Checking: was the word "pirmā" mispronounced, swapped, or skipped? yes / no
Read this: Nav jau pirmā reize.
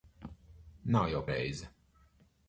yes